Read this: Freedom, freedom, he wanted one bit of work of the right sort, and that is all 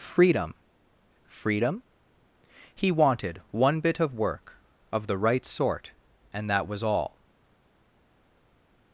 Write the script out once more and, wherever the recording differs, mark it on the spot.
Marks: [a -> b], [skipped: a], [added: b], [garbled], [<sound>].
Freedom, freedom, he wanted one bit of work of the right sort, and that [is -> was] all